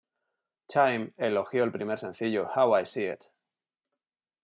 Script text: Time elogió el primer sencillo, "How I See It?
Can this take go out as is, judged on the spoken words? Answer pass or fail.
pass